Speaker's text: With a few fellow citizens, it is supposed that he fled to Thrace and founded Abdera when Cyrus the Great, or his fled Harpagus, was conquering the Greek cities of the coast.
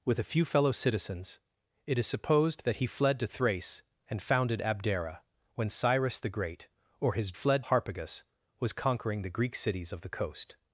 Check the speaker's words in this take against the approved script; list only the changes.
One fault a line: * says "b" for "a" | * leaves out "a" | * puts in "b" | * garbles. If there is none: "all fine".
all fine